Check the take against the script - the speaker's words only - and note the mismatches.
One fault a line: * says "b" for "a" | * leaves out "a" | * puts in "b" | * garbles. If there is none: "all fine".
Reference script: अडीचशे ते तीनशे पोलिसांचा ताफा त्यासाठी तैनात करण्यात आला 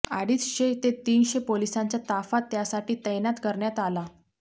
all fine